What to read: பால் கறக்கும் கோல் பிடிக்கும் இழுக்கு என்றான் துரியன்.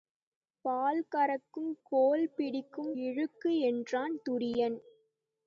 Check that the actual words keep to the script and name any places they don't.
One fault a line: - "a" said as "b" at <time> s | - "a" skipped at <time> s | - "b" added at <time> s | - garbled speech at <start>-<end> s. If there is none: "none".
none